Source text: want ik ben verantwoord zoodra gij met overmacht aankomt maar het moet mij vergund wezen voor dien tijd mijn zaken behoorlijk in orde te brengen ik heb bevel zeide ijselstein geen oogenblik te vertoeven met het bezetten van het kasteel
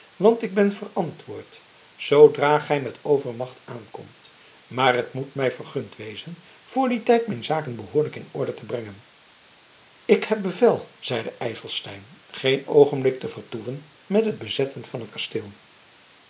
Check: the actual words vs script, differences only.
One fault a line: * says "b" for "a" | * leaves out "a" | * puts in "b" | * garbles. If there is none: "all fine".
all fine